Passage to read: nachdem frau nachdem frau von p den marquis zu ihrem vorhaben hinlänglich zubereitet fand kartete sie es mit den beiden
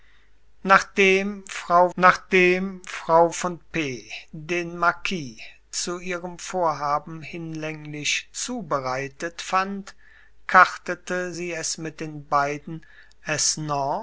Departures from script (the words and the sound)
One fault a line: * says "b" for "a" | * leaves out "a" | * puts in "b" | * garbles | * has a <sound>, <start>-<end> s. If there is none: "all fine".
all fine